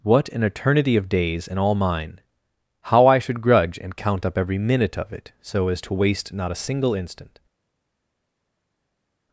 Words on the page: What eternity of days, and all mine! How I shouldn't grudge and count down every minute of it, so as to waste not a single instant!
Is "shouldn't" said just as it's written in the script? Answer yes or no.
no